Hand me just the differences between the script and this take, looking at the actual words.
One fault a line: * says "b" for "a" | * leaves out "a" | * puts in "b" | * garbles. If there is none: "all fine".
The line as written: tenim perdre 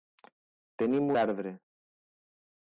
all fine